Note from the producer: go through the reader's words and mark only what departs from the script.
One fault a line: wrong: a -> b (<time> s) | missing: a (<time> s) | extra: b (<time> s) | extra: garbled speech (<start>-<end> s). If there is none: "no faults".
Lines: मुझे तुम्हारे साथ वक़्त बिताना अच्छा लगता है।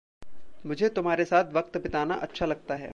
no faults